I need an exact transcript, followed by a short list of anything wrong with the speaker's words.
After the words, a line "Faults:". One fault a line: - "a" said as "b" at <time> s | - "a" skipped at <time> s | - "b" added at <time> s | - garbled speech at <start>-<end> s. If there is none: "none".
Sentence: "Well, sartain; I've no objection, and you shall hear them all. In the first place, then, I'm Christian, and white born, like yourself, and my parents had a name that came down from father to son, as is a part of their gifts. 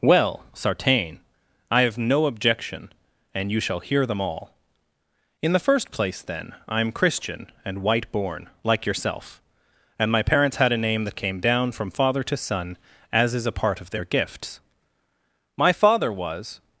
"Well, sartain; I've no objection, and you shall hear them all. In the first place, then, I'm Christian, and white born, like yourself, and my parents had a name that came down from father to son, as is a part of their gifts. My father was
Faults:
- "My father was" added at 15.6 s